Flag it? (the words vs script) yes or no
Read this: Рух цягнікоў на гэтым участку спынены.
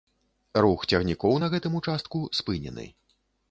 no